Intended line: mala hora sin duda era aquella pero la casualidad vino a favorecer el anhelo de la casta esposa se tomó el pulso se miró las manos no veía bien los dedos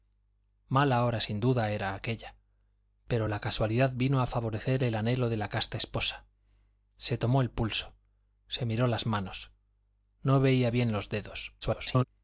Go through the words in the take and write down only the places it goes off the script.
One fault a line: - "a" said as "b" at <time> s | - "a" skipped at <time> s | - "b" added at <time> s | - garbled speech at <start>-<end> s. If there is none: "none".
- garbled speech at 11.6-12.0 s